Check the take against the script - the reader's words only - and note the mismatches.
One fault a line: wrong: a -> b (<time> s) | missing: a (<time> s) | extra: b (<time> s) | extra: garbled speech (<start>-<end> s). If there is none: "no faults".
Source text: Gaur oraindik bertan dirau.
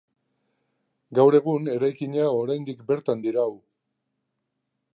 extra: egun eraikina (1.4 s)